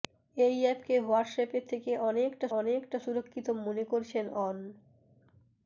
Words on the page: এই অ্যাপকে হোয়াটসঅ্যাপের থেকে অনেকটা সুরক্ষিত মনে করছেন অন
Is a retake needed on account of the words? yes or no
yes